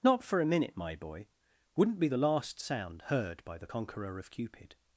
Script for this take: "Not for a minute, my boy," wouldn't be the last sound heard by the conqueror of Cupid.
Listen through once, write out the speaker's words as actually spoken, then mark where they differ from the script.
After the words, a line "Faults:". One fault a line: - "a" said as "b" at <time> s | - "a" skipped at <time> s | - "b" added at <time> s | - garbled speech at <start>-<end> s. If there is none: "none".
"Not for a minute, my boy," wouldn't be the last sound heard by the conqueror of Cupid.
Faults:
none